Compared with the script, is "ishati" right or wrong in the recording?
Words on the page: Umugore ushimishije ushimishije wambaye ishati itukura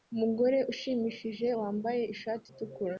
right